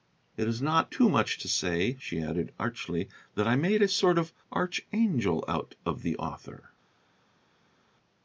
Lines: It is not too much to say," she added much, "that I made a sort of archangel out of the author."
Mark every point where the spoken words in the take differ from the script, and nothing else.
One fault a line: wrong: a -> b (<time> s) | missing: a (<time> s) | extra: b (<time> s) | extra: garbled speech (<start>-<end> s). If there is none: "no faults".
wrong: much -> archly (2.6 s)